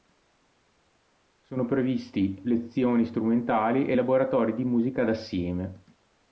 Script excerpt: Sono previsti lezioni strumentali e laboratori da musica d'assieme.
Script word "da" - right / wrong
wrong